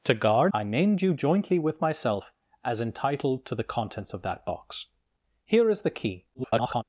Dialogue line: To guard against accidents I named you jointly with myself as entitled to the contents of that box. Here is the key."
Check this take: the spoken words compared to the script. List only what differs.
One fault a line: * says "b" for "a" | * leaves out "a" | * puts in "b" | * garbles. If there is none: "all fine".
* leaves out "against accidents"
* garbles